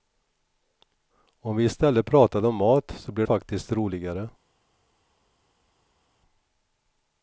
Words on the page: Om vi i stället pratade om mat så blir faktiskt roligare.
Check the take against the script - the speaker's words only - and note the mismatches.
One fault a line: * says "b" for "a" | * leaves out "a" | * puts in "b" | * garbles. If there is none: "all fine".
all fine